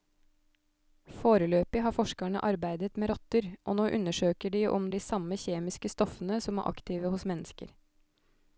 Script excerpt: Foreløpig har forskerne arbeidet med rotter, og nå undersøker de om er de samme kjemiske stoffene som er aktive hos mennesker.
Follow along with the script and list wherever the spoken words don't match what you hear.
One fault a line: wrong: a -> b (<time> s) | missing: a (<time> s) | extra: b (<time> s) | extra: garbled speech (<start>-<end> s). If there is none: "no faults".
no faults